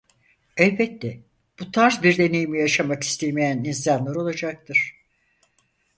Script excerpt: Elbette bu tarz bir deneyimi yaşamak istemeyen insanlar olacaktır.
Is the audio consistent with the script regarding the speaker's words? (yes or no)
yes